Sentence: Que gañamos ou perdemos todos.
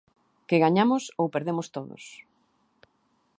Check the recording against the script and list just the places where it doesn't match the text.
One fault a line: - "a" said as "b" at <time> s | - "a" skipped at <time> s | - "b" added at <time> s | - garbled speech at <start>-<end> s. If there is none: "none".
none